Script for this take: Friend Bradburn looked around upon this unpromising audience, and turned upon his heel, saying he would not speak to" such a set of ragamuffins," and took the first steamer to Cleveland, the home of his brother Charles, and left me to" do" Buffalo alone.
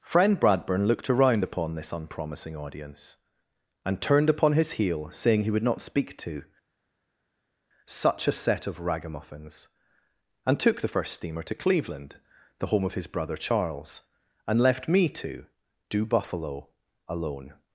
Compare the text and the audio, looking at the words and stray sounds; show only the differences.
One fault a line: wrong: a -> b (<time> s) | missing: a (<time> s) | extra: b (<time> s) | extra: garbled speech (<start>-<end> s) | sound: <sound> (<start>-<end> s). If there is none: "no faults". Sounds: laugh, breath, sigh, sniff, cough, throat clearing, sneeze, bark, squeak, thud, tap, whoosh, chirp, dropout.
no faults